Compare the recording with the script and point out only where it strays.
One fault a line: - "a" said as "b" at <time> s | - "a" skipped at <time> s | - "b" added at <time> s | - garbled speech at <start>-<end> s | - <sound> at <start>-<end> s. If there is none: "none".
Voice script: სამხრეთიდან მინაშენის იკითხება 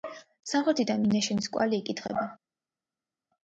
- "კვალი" added at 1.6 s